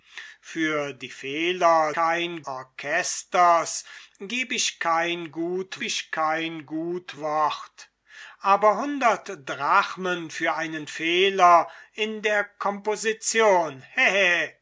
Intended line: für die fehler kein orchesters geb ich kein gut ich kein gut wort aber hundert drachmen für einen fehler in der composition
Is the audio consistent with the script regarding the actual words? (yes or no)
yes